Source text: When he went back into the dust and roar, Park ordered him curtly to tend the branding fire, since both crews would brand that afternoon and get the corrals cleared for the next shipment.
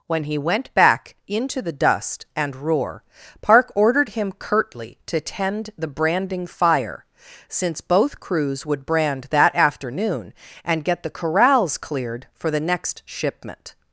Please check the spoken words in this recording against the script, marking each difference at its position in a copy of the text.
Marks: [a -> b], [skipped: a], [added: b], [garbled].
When he went back into the dust and roar, Park ordered him curtly to tend the branding fire, since both crews would brand that afternoon and get the corrals cleared for the next shipment.